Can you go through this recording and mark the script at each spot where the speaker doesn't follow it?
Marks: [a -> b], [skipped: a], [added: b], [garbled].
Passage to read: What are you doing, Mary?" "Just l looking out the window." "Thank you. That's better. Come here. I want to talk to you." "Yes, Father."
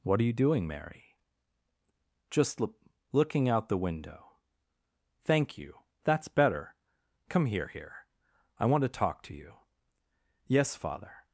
What are you doing, Mary?" "Just l looking out the window." "Thank you. That's better. Come here. [added: here] I want to talk to you." "Yes, Father."